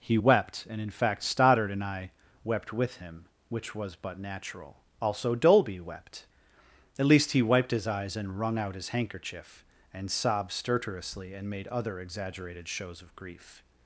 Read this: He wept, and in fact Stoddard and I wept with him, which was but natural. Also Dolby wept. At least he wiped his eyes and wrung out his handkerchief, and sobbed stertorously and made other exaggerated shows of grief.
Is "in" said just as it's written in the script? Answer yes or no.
yes